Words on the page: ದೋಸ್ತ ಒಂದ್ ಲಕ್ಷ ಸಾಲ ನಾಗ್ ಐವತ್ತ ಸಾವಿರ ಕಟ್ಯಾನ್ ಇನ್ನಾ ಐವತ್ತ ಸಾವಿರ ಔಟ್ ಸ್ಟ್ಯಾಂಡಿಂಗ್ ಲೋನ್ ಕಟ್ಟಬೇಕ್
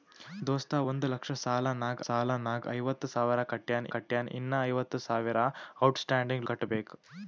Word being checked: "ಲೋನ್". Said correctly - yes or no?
no